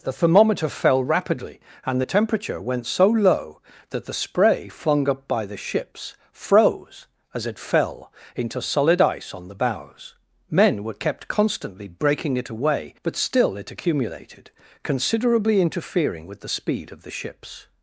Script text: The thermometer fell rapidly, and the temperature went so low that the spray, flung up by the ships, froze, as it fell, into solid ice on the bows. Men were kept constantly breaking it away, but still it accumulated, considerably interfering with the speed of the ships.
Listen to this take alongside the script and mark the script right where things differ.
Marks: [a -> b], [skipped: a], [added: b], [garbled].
The thermometer fell rapidly, and the temperature went so low that the spray, flung up by the ships, froze, as it fell, into solid ice on the bows. Men were kept constantly breaking it away, but still it accumulated, considerably interfering with the speed of the ships.